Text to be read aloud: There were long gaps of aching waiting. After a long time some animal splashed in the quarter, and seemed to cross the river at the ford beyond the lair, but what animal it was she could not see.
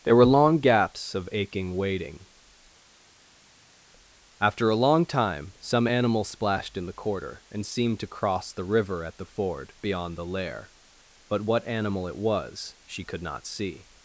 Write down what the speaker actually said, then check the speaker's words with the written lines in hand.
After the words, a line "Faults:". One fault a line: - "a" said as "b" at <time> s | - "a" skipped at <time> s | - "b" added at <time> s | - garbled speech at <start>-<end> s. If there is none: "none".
There were long gaps of aching waiting. After a long time some animal splashed in the quarter, and seemed to cross the river at the ford beyond the lair, but what animal it was she could not see.
Faults:
none